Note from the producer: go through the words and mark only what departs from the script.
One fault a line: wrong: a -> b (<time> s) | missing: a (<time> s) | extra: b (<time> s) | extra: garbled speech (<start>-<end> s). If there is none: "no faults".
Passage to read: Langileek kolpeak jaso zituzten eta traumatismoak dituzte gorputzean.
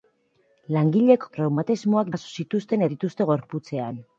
wrong: kolpeak -> traumatismoak (1.4 s)
missing: eta traumatismoak (2.9 s)